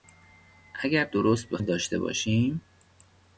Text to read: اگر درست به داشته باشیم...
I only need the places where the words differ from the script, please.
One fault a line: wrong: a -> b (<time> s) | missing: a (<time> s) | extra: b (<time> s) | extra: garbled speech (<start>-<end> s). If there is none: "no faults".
no faults